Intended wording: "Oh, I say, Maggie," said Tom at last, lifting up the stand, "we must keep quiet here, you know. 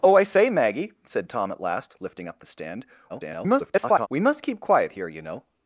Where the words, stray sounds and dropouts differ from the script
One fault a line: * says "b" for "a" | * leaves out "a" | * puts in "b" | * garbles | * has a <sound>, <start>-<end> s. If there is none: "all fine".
* garbles